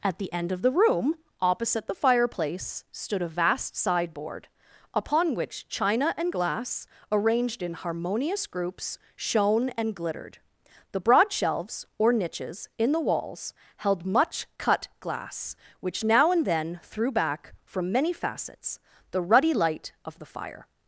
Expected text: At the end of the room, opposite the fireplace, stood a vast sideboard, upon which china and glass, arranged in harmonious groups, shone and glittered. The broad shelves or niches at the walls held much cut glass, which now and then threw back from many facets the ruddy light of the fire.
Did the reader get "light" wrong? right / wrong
right